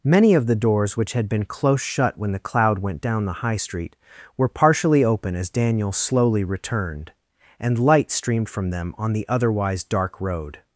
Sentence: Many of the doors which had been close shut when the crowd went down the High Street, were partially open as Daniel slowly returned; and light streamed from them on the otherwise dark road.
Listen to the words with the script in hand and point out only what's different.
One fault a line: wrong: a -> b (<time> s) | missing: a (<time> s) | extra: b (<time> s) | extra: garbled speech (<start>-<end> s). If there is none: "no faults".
wrong: crowd -> cloud (2.4 s)